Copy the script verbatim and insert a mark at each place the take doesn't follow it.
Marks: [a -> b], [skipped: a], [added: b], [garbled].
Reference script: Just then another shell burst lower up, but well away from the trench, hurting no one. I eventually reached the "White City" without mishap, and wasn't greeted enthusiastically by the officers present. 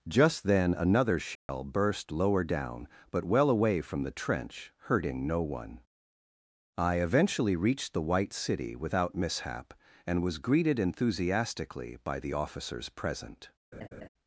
Just then another shell burst lower [up, -> down] but well away from the trench, hurting no one. I eventually reached the "White City" without mishap, and [wasn't -> was] greeted enthusiastically by the officers present.